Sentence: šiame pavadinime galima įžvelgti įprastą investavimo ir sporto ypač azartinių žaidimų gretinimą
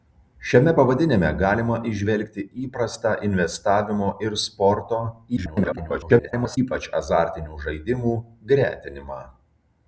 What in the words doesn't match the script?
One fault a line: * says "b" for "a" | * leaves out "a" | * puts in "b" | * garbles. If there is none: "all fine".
* garbles